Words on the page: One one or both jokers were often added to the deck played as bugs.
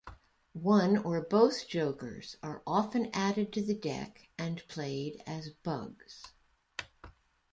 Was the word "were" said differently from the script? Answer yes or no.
yes